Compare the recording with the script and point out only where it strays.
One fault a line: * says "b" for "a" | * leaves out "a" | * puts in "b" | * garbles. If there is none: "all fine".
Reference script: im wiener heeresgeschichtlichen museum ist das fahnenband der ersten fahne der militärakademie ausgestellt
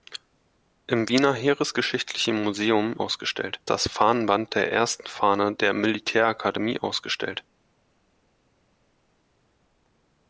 * says "ausgestellt" for "ist"